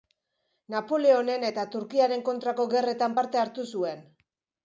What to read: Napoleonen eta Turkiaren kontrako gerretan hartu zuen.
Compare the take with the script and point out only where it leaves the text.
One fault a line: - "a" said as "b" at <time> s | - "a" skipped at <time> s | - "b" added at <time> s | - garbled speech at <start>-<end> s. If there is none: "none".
- "parte" added at 3.2 s